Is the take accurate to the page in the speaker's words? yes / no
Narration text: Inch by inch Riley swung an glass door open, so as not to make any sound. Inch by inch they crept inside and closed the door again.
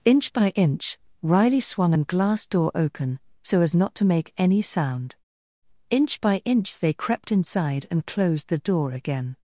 yes